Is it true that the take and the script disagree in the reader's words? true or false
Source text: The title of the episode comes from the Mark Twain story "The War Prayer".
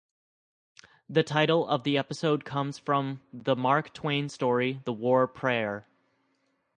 false